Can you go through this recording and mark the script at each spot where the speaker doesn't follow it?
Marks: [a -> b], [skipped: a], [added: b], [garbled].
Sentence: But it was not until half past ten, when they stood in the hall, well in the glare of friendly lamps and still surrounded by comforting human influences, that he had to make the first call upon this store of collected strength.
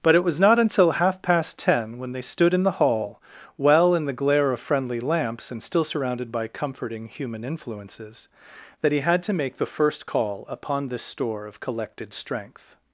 But it was not until half past ten, when they stood in the hall, well in the glare of friendly lamps and still surrounded by comforting human influences, that he had to make the first call upon this store of collected strength.